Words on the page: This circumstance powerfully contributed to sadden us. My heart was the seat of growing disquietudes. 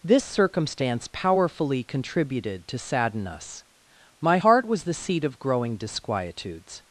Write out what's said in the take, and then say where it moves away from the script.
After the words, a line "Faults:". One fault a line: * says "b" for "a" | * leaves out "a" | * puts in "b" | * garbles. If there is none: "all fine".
This circumstance powerfully contributed to sadden us. My heart was the seat of growing disquietudes.
Faults:
all fine